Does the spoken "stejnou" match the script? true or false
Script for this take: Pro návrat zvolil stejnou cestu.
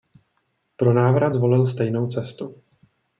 true